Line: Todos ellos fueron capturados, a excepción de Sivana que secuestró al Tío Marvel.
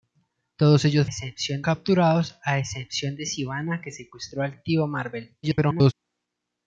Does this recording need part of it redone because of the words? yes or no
yes